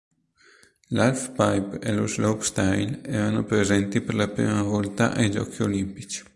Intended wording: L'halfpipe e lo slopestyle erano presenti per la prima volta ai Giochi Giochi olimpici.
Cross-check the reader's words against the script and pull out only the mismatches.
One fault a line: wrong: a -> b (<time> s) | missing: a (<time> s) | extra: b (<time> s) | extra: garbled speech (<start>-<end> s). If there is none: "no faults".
missing: Giochi (5.6 s)